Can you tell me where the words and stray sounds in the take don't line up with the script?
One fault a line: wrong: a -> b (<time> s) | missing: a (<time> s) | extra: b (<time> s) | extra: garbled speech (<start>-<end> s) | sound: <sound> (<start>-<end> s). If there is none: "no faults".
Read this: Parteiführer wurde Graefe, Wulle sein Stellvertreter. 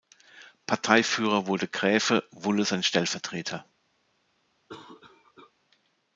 sound: cough (4.7-5.5 s)